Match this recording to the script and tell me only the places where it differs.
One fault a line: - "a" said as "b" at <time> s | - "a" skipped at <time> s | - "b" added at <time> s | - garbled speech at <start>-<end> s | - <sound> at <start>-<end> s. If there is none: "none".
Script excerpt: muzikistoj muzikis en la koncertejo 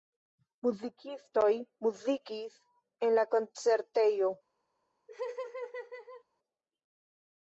- laugh at 5.1-6.2 s